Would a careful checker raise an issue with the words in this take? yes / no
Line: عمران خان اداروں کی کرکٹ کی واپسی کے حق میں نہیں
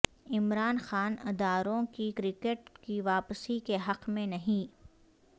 no